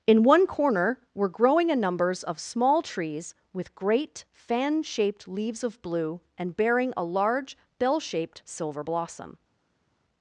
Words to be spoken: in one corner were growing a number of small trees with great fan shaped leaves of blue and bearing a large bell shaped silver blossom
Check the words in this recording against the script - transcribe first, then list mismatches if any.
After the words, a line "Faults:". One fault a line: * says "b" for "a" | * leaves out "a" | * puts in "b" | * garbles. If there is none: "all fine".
in one corner were growing a numbers of small trees with great fan shaped leaves of blue and bearing a large bell shaped silver blossom
Faults:
* says "numbers" for "number"